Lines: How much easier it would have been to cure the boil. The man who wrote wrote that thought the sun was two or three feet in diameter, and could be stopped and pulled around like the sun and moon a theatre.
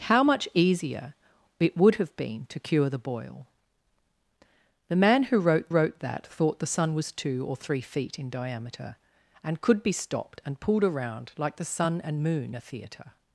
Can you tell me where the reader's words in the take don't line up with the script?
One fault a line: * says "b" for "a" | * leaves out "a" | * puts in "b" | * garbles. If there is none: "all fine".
all fine